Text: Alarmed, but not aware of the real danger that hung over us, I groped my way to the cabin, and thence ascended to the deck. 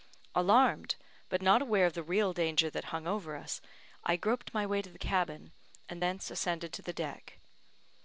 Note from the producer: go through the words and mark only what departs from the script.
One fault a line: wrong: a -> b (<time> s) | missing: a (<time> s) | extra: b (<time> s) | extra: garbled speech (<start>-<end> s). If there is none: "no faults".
no faults